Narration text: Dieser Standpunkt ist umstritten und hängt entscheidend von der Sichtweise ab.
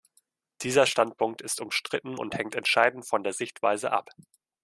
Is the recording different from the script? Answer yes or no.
no